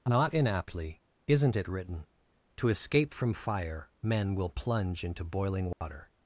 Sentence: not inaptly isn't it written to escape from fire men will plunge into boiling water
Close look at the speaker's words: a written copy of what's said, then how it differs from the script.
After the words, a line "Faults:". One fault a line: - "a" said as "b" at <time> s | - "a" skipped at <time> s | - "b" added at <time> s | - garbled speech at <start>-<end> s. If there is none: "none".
not inaptly isn't it written to escape from fire men will plunge into boiling water
Faults:
none